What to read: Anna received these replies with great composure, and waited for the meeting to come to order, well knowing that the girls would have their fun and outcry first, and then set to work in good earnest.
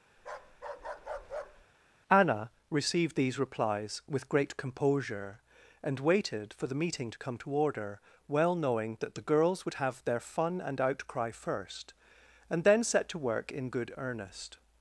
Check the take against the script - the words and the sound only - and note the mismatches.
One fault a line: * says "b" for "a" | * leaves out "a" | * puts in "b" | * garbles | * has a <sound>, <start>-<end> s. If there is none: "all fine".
* has a bark, 0.2-1.7 s